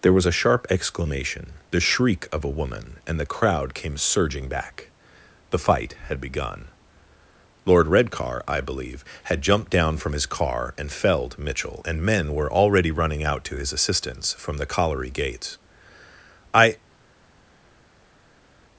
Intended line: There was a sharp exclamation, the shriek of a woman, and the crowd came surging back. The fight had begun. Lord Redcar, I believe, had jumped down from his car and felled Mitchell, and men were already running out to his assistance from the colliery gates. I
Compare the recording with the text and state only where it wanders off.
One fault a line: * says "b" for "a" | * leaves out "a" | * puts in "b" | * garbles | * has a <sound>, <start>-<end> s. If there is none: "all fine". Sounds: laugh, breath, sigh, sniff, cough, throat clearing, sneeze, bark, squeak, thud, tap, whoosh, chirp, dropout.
all fine